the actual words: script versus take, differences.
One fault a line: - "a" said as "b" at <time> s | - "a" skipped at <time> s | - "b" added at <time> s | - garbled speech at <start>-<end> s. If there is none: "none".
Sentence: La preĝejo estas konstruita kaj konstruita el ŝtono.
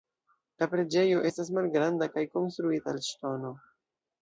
- "konstruita" said as "malgranda" at 1.6 s